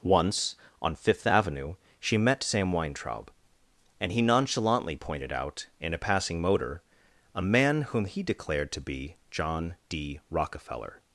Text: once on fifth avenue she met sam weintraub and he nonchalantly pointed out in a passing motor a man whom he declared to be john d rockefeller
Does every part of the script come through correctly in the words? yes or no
yes